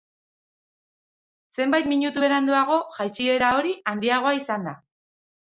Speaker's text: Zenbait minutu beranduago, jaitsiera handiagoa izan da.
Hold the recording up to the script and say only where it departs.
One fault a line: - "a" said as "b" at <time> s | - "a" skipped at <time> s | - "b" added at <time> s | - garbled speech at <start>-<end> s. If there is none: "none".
- "hori" added at 3.6 s